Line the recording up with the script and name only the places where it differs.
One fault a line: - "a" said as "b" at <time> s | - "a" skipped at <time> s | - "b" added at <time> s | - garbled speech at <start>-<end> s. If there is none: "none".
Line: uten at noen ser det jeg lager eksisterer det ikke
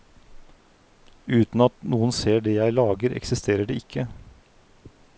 none